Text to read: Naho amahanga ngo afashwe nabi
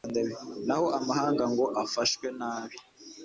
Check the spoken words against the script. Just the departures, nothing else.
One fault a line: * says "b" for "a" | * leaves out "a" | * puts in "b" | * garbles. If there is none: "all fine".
all fine